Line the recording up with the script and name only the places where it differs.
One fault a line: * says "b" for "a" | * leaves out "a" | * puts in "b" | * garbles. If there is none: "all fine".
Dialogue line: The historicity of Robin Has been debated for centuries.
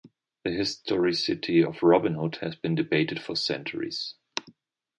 * puts in "Hood"